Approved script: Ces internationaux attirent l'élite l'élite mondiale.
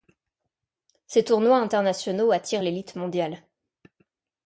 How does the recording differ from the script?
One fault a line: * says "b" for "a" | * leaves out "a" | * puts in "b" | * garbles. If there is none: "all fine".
* puts in "tournois"
* leaves out "l'élite"